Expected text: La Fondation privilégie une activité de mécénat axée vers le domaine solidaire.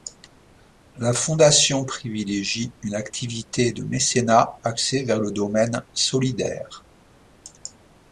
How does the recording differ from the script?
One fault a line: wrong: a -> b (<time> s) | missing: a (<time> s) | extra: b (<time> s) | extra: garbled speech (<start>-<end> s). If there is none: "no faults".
no faults